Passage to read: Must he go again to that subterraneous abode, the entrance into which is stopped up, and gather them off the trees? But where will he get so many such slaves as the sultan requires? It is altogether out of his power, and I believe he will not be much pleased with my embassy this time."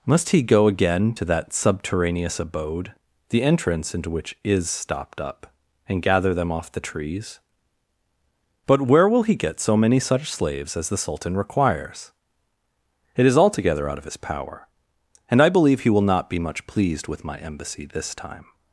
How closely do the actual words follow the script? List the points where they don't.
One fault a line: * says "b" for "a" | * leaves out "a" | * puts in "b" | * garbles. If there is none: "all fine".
all fine